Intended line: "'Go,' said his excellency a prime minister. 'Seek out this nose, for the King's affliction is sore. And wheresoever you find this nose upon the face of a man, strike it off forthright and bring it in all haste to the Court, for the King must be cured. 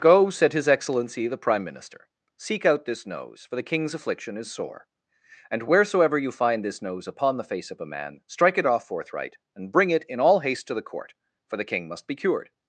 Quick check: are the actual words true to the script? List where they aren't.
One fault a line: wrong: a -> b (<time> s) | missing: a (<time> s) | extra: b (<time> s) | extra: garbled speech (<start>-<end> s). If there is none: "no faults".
wrong: a -> the (1.3 s)